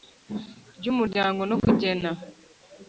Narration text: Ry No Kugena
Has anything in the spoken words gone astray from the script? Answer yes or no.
yes